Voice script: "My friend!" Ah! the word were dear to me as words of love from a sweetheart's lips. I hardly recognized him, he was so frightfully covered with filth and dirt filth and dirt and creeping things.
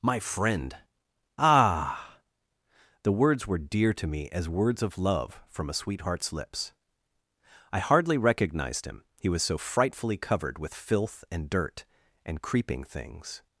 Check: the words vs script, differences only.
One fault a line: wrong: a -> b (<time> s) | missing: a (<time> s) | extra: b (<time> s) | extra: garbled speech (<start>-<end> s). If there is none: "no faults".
wrong: word -> words (3.1 s)
missing: filth and dirt (11.8 s)